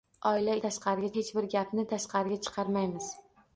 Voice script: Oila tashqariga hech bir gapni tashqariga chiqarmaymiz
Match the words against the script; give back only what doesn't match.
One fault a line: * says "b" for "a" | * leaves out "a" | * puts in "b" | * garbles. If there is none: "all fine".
all fine